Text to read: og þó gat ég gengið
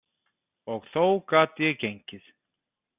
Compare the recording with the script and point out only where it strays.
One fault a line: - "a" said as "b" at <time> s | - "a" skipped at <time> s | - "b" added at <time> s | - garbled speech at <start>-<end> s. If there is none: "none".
none